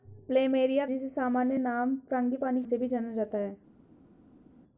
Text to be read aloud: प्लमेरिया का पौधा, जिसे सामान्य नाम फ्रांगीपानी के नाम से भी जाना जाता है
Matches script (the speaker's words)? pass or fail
fail